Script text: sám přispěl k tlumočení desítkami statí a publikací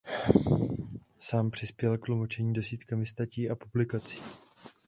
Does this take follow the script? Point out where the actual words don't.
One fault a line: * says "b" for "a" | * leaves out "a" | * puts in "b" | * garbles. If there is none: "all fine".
all fine